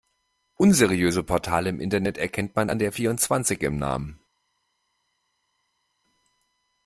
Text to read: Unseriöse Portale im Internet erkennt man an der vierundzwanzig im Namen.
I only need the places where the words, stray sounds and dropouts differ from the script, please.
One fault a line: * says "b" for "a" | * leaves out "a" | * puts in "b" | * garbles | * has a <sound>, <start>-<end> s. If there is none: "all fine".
all fine